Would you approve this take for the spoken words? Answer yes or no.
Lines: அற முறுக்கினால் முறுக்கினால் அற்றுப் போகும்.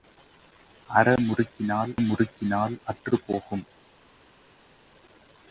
yes